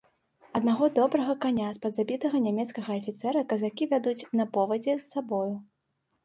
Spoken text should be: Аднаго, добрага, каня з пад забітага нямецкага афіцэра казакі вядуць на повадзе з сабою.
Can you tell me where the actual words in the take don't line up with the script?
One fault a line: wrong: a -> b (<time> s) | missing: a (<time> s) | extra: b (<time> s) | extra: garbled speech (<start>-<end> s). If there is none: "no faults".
no faults